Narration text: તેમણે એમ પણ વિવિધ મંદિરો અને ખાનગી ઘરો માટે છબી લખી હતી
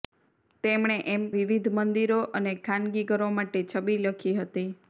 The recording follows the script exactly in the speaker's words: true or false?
false